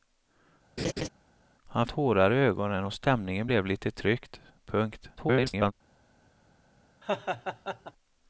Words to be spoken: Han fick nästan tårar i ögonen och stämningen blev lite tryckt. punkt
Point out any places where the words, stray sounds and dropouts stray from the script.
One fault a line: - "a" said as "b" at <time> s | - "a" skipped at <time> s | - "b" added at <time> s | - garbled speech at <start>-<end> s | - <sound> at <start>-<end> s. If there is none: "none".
- laugh at 0.8-1.1 s
- "fick nästan" skipped at 1.9 s
- garbled speech at 5.2-5.7 s
- laugh at 7.0-7.9 s